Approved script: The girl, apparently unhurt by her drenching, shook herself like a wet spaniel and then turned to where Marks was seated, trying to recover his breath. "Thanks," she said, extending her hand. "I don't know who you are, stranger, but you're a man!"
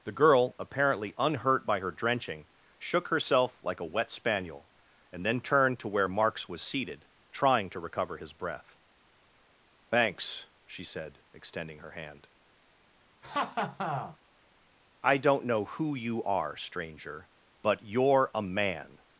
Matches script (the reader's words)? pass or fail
pass